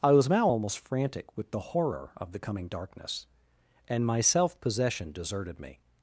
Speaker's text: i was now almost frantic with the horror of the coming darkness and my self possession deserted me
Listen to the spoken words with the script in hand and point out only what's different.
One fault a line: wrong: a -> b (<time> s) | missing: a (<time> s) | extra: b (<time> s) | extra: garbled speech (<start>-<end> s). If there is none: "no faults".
no faults